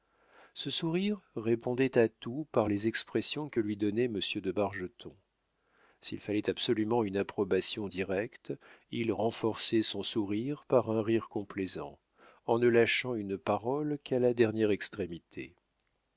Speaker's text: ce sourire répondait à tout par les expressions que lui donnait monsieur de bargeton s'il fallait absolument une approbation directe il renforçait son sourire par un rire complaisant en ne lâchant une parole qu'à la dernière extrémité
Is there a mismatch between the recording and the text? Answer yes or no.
no